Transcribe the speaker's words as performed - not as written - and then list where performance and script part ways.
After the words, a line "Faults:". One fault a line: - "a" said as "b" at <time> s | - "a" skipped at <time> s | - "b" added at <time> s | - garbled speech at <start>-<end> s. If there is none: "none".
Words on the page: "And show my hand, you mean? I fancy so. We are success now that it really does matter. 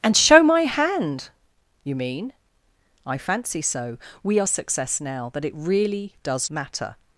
"And show my hand, you mean? I fancy so. We are success now that it really does matter.
Faults:
none